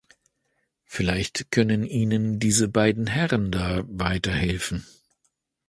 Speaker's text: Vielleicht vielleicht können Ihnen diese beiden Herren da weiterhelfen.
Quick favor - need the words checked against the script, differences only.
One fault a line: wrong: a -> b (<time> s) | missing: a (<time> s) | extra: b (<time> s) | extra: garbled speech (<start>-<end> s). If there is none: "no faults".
missing: vielleicht (1.5 s)